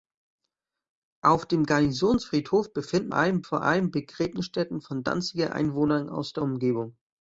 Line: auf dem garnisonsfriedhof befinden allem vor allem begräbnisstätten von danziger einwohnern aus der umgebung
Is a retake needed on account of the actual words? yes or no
no